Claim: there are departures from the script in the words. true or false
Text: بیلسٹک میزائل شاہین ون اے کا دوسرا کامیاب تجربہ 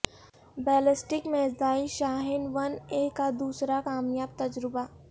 false